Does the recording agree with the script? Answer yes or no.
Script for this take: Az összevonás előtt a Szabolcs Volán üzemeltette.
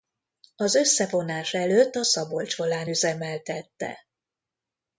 yes